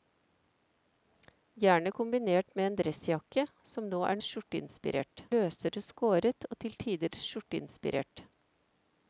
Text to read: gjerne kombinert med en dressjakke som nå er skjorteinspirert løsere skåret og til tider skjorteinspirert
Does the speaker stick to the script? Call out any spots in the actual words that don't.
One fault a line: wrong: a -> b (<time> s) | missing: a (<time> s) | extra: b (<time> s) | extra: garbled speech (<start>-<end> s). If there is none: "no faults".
no faults